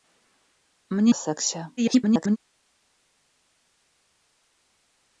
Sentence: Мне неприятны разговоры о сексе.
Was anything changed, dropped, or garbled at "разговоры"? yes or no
yes